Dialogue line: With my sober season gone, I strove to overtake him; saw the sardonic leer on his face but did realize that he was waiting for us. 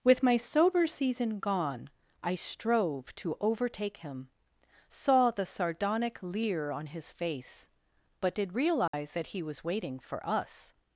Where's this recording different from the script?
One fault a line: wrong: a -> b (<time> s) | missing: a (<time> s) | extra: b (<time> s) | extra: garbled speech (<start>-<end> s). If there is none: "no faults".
no faults